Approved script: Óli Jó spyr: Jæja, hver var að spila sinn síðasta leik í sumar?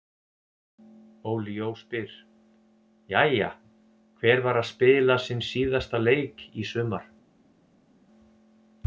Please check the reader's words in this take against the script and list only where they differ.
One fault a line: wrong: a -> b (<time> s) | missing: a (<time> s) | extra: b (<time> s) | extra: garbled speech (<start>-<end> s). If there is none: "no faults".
no faults